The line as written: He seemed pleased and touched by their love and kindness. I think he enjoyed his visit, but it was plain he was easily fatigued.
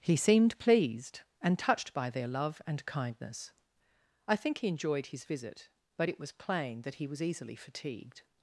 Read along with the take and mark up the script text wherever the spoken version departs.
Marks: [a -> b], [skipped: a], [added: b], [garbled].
He seemed pleased and touched by their love and kindness. I think he enjoyed his visit, but it was plain [added: that] he was easily fatigued.